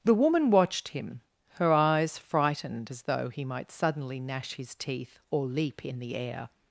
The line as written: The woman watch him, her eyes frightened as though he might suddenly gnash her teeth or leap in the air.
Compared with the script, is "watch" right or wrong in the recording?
wrong